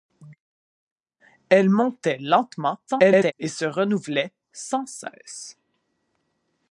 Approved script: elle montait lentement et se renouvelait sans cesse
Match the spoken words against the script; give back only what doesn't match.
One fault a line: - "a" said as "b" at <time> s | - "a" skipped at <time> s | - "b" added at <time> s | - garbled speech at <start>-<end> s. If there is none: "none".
- garbled speech at 2.9-3.3 s